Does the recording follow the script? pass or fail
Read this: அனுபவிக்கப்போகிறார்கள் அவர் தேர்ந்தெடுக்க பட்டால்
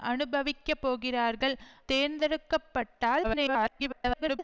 fail